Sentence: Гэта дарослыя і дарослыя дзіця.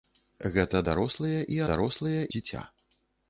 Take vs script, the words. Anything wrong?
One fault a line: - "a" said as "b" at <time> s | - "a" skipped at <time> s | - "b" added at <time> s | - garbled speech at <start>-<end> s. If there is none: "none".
none